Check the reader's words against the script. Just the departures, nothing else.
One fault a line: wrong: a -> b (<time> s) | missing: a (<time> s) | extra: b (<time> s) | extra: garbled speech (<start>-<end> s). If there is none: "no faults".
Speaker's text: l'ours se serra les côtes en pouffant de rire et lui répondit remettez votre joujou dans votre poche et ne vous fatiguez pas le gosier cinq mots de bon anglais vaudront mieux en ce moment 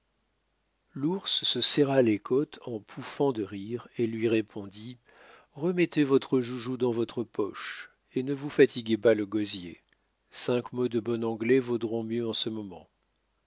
no faults